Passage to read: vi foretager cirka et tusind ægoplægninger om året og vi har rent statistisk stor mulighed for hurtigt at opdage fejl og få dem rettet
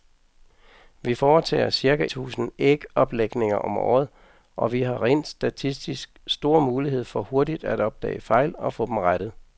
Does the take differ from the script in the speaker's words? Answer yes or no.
yes